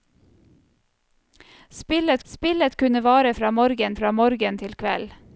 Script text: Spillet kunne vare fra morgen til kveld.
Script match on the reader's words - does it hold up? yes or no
no